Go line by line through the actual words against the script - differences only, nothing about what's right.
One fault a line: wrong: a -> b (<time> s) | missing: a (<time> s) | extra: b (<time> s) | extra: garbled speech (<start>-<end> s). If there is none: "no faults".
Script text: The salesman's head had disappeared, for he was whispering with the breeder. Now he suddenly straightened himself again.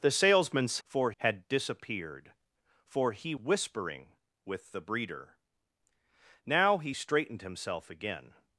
wrong: head -> for (0.8 s)
missing: was (3.4 s)
missing: suddenly (6.9 s)